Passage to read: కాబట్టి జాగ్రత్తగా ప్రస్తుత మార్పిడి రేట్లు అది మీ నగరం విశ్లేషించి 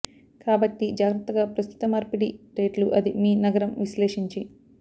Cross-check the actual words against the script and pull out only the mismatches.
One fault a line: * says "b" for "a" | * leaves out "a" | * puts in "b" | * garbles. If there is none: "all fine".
all fine